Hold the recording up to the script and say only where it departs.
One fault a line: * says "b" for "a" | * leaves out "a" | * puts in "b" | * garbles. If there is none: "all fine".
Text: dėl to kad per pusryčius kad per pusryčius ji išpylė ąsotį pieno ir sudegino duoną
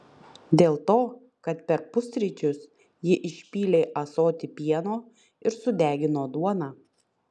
* leaves out "kad per pusryčius"